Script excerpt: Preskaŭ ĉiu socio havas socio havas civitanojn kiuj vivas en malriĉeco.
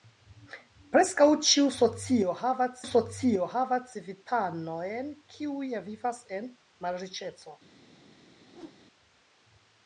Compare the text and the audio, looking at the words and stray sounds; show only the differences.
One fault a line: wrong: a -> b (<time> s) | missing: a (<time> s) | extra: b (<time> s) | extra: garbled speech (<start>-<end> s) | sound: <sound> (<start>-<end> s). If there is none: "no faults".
sound: whoosh (8.5-8.8 s)